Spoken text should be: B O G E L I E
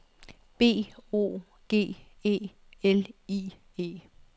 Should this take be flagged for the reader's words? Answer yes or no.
no